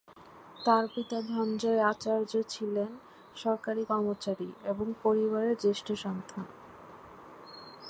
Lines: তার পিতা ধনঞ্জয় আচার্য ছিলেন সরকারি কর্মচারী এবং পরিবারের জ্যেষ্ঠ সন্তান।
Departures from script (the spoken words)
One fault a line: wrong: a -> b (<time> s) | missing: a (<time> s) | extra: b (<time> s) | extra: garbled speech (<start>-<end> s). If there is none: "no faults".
no faults